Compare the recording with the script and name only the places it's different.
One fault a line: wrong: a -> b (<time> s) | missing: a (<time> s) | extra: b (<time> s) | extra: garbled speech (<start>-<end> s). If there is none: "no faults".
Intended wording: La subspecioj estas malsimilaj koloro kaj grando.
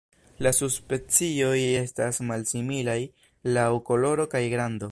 extra: laŭ (3.6 s)